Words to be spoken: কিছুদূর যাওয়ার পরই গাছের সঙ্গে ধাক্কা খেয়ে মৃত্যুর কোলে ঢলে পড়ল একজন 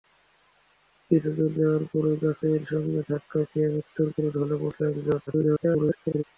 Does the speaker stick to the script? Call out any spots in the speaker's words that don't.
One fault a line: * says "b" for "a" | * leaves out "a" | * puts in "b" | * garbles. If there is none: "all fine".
* garbles